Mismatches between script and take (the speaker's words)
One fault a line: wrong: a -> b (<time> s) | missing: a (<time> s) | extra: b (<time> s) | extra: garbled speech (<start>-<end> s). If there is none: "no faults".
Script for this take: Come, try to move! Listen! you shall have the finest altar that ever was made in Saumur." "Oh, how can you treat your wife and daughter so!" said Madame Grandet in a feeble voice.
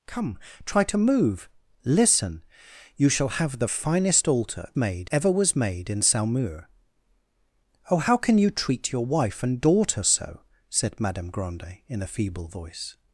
wrong: that -> made (4.8 s)